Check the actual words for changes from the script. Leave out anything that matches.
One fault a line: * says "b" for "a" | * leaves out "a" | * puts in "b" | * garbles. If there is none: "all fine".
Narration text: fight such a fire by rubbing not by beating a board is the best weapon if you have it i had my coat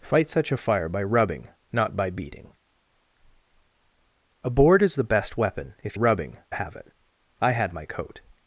* says "rubbing" for "you"